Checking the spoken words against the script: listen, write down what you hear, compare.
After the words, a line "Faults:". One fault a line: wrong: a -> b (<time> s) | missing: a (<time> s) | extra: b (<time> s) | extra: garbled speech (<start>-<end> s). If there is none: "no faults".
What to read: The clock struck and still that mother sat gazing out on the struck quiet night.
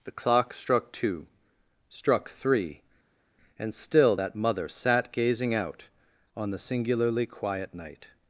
The clock struck two, struck three, and still that mother sat gazing out on the singularly quiet night.
Faults:
extra: two struck three (0.9 s)
wrong: struck -> singularly (6.6 s)